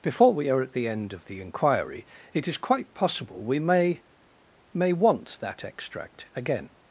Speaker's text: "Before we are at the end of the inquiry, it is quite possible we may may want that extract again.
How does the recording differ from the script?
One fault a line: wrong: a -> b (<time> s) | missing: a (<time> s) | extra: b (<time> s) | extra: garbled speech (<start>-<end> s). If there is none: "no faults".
no faults